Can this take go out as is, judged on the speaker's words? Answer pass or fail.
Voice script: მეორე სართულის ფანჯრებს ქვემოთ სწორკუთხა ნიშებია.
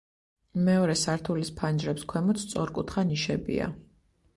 pass